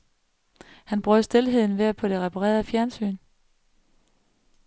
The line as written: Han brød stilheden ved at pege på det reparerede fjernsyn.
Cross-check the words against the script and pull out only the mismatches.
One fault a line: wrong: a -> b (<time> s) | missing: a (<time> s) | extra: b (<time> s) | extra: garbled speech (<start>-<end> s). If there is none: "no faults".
missing: pege (2.0 s)